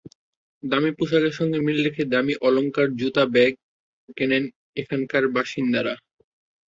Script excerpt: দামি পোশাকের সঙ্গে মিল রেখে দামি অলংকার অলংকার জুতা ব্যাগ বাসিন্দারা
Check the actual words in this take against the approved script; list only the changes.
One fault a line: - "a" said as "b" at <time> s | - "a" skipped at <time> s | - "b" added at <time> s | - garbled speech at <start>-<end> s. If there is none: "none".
- "অলংকার" skipped at 2.9 s
- "কেনেন এখানকার" added at 4.2 s